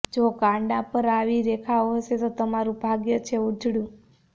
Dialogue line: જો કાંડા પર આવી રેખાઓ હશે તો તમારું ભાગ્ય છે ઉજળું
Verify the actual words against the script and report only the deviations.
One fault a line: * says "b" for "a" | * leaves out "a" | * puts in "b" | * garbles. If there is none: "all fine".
all fine